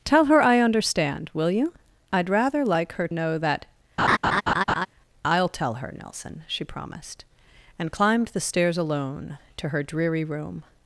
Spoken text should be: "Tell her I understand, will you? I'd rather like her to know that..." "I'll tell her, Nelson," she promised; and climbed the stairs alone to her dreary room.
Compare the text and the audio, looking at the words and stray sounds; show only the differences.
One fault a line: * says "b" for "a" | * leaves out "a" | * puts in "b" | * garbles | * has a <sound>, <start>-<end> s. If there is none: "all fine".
* leaves out "to"
* has a laugh, 4.0-4.9 s